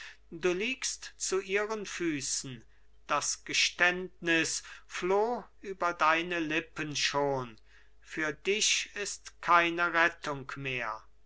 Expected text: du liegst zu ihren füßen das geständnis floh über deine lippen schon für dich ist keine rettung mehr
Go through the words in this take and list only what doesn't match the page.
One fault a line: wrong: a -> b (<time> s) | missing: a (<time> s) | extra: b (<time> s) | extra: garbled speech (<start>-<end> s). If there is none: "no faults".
no faults